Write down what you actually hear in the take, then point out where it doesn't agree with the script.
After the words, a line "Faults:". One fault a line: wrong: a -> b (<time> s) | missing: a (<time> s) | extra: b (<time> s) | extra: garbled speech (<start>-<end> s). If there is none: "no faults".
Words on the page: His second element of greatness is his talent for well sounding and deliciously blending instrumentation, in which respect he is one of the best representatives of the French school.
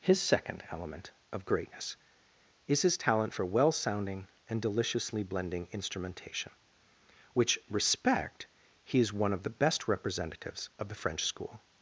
His second element of greatness is his talent for well sounding and deliciously blending instrumentation, which respect he is one of the best representatives of the French school.
Faults:
missing: in (6.5 s)